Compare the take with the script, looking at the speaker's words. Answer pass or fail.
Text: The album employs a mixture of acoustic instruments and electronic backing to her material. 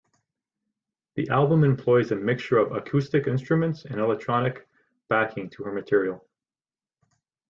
pass